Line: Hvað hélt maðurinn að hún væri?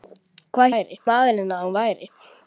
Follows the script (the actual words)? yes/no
no